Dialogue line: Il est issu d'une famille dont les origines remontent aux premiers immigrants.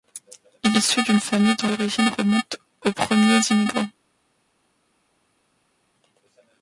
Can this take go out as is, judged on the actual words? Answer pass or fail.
fail